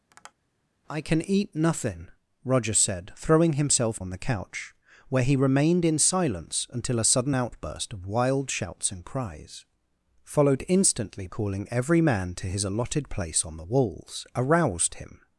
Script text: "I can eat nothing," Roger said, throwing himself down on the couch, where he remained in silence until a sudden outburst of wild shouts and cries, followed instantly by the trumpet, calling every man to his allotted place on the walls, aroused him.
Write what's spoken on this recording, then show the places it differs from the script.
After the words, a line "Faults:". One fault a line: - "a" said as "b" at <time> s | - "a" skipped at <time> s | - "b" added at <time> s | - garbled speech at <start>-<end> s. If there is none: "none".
"I can eat nothing," Roger said, throwing himself on the couch, where he remained in silence until a sudden outburst of wild shouts and cries, followed instantly calling every man to his allotted place on the walls, aroused him.
Faults:
- "down" skipped at 4.0 s
- "by the trumpet" skipped at 11.3 s